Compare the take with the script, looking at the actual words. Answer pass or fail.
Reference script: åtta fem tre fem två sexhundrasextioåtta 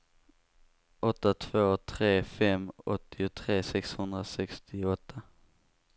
fail